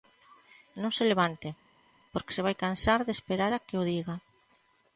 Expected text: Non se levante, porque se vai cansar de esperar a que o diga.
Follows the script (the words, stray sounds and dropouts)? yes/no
yes